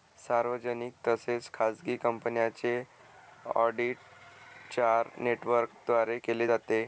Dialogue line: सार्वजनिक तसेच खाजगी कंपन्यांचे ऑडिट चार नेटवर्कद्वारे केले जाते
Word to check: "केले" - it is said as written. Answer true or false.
true